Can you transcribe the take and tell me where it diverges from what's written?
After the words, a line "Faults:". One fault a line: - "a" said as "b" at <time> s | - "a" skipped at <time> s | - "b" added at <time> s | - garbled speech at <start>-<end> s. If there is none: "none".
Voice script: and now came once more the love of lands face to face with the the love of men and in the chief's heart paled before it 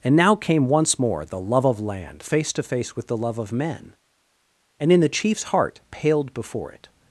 and now came once more the love of land face to face with the love of men and in the chief's heart paled before it
Faults:
- "lands" said as "land" at 1.8 s
- "the" skipped at 3.2 s